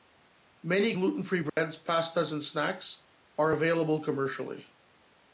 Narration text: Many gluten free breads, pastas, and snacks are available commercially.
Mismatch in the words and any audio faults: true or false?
true